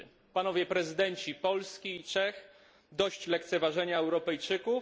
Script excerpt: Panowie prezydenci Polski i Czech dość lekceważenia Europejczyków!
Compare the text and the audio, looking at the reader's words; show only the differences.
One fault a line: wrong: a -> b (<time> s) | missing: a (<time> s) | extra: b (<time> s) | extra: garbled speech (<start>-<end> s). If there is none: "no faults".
no faults